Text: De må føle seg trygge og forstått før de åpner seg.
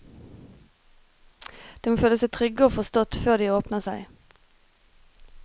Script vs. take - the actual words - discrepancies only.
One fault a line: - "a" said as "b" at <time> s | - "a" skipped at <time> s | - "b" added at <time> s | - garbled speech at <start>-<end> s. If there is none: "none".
none